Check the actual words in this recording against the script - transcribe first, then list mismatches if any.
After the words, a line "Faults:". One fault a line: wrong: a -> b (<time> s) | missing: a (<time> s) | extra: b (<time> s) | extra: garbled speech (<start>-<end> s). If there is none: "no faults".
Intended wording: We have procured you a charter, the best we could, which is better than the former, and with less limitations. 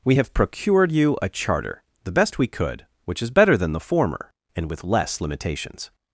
We have procured you a charter, the best we could, which is better than the former, and with less limitations.
Faults:
no faults